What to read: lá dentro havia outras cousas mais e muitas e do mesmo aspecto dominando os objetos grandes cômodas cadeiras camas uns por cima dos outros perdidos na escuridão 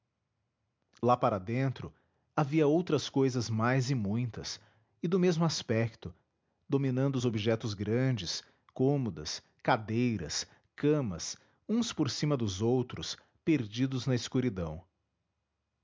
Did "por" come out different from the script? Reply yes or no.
no